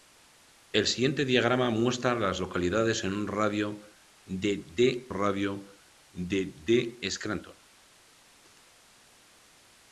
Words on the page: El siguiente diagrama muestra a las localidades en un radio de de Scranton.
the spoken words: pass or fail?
fail